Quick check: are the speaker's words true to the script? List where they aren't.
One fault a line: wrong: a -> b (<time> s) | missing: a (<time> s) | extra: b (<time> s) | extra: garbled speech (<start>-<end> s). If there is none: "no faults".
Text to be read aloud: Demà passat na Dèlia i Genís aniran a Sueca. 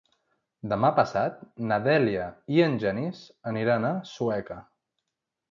extra: en (2.7 s)